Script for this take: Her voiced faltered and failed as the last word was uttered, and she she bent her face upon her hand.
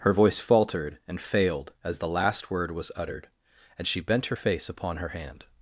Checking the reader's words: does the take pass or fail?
fail